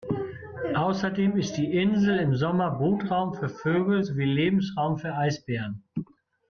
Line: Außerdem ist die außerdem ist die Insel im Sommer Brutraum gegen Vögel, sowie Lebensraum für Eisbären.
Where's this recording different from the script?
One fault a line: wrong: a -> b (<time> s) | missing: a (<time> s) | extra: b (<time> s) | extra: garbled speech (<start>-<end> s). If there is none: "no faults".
missing: außerdem ist die (1.7 s)
wrong: gegen -> für (3.4 s)